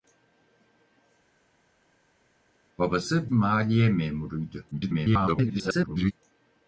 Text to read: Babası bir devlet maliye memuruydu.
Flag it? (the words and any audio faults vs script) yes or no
yes